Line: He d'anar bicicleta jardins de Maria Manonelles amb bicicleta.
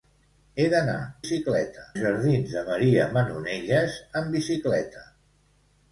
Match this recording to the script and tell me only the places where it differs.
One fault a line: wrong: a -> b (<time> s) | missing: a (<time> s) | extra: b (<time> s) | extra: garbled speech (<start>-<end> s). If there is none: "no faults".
no faults